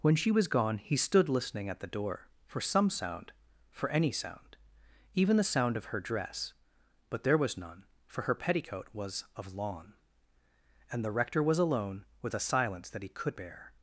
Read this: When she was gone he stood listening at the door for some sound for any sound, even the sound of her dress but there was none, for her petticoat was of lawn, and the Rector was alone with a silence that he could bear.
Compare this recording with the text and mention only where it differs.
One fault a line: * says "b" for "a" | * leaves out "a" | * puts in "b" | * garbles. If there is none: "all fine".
all fine